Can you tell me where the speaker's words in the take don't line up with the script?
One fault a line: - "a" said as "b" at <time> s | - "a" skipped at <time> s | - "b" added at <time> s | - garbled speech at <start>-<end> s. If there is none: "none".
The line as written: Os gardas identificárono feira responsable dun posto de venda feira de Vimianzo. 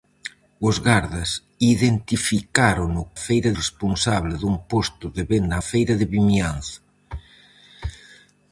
none